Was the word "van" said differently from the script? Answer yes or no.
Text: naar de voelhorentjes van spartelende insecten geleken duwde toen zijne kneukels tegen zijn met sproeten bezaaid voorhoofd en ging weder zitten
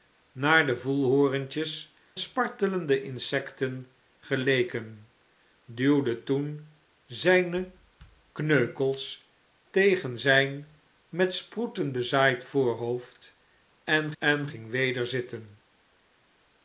yes